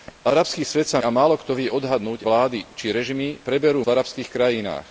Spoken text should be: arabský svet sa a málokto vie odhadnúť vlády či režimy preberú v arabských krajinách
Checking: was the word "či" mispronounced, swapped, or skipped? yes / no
no